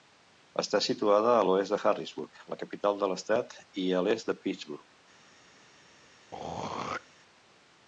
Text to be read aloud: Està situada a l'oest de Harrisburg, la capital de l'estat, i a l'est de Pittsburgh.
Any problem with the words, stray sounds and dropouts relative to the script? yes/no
yes